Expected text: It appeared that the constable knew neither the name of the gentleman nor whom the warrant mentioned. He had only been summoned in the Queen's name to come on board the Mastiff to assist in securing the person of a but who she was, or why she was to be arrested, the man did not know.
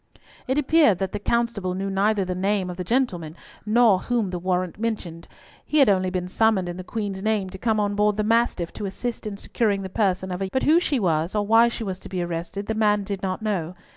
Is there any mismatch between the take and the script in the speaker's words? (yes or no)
no